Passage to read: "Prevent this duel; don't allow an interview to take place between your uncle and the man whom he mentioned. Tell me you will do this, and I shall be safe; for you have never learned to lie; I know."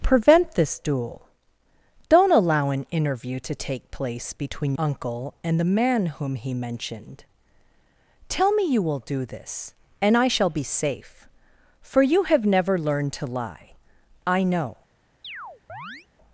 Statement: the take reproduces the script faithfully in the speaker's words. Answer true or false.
false